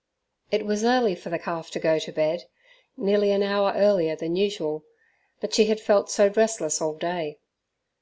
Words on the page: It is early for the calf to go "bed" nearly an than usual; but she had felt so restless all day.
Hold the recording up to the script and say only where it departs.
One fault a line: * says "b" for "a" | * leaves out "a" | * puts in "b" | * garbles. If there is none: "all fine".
* says "was" for "is"
* puts in "to"
* puts in "hour earlier"